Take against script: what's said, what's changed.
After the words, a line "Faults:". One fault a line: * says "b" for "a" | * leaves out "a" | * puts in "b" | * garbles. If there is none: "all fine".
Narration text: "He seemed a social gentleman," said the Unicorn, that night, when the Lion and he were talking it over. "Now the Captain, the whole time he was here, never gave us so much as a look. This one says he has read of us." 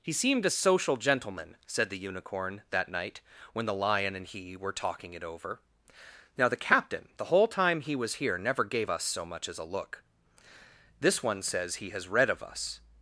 "He seemed a social gentleman," said the Unicorn, that night, when the Lion and he were talking it over. "Now the Captain, the whole time he was here, never gave us so much as a look. This one says he has read of us."
Faults:
all fine